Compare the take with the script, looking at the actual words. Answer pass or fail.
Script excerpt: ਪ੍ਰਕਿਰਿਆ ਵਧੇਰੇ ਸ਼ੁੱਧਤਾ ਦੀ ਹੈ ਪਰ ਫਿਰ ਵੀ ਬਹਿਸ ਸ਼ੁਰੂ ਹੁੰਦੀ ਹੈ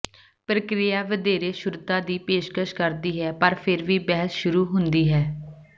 fail